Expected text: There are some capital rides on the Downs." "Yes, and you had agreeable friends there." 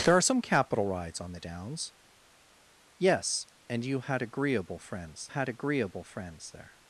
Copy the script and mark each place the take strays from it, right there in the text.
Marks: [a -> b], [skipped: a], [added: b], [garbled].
There are some capital rides on the Downs." "Yes, and you had agreeable friends [added: had agreeable friends] there."